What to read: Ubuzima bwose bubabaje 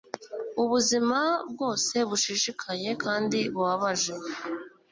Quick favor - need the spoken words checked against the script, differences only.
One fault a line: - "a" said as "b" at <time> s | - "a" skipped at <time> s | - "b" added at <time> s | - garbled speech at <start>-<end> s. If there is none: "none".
- "bushishikaye kandi" added at 2.1 s